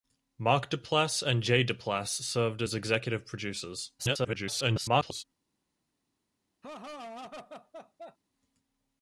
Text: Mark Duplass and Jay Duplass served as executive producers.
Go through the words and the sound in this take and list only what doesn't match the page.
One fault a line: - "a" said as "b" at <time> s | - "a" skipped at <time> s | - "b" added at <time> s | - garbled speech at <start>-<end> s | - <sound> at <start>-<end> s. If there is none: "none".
- garbled speech at 4.0-5.2 s
- laugh at 6.6-8.2 s